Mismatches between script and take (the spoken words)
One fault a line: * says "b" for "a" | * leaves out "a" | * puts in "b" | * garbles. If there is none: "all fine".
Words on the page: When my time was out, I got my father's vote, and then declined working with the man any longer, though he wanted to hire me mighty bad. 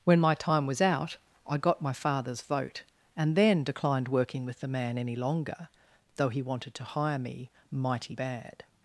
all fine